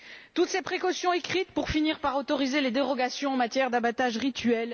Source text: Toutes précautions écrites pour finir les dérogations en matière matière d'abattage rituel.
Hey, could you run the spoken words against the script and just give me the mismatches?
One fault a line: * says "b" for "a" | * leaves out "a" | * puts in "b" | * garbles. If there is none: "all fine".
* puts in "ces"
* puts in "par autoriser"
* leaves out "matière"